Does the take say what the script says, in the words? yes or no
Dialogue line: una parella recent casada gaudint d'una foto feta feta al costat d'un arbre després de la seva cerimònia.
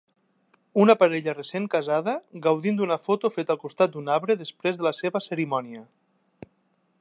no